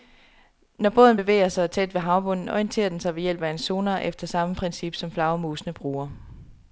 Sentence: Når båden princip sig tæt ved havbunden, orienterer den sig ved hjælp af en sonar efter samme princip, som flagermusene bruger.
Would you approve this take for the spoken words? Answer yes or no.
no